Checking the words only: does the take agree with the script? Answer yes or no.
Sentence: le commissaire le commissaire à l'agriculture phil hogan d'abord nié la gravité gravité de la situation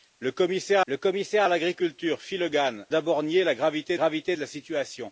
yes